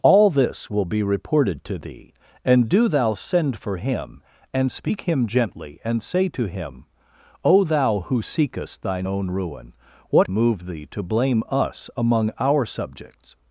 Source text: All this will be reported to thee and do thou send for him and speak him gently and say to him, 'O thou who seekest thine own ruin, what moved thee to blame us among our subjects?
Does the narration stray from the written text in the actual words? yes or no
no